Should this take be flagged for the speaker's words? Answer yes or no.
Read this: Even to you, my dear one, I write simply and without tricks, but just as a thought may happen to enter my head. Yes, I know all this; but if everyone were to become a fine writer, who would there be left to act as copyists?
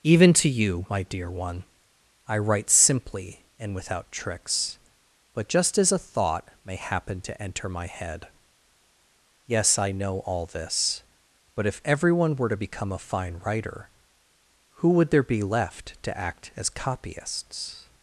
no